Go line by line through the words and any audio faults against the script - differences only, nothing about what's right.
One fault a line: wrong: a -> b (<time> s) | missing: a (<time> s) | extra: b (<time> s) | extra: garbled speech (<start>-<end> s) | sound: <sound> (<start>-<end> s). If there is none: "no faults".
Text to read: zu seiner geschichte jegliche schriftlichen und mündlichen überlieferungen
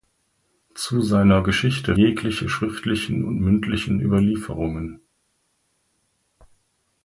no faults